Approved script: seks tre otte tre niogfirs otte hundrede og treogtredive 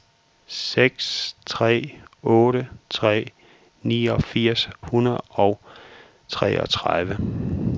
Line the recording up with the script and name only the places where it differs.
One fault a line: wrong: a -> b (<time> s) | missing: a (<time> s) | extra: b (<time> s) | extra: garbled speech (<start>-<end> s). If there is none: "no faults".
missing: otte (4.7 s)